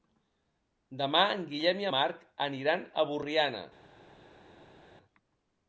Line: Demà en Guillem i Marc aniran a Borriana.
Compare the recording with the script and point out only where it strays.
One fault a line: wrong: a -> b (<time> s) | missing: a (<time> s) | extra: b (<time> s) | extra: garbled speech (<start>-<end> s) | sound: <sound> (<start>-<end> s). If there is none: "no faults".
no faults